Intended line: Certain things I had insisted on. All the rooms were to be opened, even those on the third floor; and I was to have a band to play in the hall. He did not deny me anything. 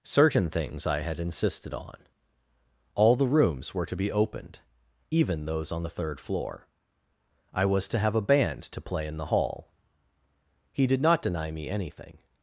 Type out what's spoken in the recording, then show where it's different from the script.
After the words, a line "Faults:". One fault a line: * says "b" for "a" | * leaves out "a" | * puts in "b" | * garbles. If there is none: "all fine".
Certain things I had insisted on. All the rooms were to be opened, even those on the third floor; I was to have a band to play in the hall. He did not deny me anything.
Faults:
* leaves out "and"